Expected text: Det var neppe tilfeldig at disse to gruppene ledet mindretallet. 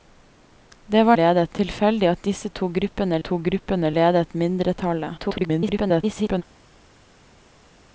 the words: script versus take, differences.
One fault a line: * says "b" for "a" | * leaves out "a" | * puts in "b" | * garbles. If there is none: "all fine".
* says "ledet" for "neppe"
* puts in "to gruppene"
* garbles